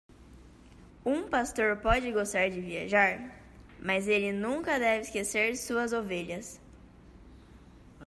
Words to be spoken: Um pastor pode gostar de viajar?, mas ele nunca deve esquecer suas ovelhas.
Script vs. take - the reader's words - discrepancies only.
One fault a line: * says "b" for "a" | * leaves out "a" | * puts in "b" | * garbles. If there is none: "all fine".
all fine